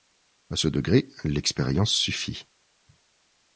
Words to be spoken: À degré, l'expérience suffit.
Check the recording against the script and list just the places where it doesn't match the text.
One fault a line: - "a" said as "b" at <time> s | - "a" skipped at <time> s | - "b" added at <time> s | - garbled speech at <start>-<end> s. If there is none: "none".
- "ce" added at 0.6 s